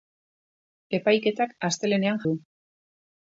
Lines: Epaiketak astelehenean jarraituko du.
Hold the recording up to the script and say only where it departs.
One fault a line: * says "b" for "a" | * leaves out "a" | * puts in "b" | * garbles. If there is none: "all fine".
* leaves out "jarraituko"